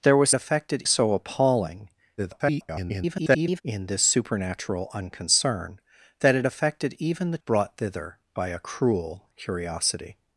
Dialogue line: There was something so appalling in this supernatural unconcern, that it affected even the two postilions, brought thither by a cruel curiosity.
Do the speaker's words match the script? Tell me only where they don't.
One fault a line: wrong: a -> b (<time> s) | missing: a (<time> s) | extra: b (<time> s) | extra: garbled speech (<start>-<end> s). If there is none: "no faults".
wrong: something -> affected (0.3 s)
extra: garbled speech (2.2-3.6 s)
missing: two postilions (7.4 s)